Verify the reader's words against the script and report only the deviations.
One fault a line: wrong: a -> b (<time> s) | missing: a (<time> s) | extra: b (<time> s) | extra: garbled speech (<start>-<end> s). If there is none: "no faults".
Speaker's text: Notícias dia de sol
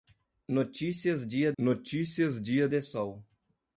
extra: notícias dia (1.6 s)